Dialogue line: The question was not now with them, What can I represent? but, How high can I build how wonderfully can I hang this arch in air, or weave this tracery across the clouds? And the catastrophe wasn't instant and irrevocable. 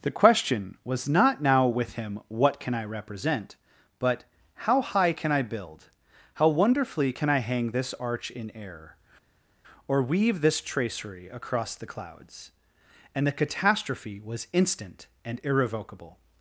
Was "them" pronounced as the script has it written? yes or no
no